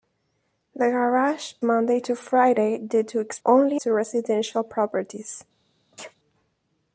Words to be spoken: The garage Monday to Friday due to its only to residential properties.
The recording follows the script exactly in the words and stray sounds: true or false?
false